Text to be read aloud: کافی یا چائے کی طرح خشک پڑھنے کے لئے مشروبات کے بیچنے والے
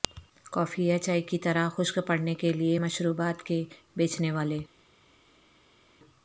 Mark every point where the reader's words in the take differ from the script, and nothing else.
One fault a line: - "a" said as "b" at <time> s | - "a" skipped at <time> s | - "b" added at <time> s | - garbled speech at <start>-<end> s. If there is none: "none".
none